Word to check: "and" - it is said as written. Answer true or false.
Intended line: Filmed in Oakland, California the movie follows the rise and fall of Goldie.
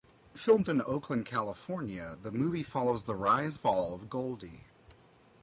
false